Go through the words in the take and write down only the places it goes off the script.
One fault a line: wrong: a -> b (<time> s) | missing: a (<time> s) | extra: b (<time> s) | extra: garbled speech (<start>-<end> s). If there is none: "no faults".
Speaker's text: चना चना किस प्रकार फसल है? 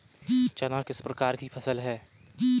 missing: चना (0.8 s)
extra: की (1.4 s)